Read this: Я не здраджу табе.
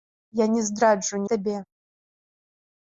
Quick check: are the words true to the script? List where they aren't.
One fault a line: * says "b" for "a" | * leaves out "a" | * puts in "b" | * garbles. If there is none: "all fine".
all fine